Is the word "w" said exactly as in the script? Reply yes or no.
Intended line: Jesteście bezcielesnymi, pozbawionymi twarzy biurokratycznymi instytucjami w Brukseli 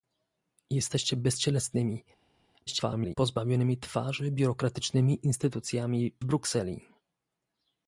no